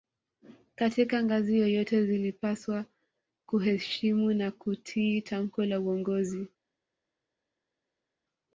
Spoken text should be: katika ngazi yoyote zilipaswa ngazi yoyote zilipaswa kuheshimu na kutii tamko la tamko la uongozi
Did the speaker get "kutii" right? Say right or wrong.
right